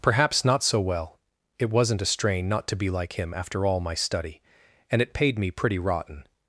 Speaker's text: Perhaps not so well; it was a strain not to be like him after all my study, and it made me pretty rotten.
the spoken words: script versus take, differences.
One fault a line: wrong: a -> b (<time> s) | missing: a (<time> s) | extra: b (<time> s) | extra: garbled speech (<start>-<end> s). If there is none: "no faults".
wrong: was -> wasn't (1.7 s)
wrong: made -> paid (5.1 s)